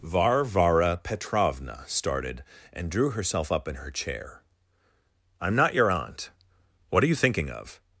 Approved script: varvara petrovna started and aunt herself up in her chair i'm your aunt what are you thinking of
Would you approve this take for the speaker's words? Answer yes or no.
no